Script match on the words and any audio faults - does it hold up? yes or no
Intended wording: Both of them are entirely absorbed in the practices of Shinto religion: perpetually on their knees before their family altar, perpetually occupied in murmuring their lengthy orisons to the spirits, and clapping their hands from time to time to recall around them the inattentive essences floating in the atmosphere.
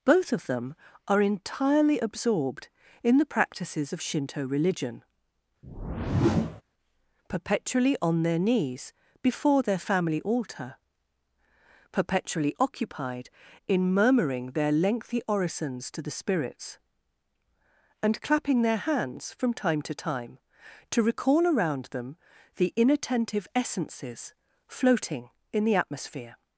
no